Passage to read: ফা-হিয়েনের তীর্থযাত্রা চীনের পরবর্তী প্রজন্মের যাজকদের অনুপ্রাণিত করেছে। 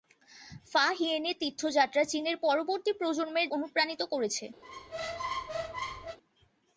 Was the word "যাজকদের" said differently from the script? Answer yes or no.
yes